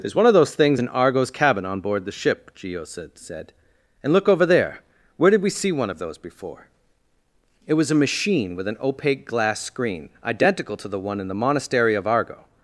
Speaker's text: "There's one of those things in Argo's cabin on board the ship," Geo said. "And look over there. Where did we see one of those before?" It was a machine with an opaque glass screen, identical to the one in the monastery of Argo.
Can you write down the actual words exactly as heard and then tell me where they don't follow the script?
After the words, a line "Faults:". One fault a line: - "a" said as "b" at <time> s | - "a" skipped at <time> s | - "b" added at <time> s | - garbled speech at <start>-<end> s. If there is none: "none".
"There's one of those things in Argo's cabin on board the ship," Geo said said. "And look over there. Where did we see one of those before?" It was a machine with an opaque glass screen, identical to the one in the monastery of Argo.
Faults:
- "said" added at 3.2 s